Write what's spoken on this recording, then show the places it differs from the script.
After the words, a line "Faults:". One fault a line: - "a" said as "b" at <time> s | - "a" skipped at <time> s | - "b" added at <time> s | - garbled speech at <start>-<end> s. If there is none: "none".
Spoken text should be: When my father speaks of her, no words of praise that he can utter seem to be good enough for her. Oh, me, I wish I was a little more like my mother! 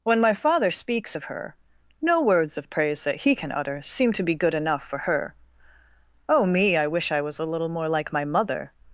When my father speaks of her, no words of praise that he can utter seem to be good enough for her. Oh, me, I wish I was a little more like my mother!
Faults:
none